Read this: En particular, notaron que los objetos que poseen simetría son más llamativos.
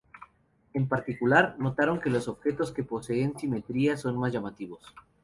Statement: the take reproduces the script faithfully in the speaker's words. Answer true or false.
true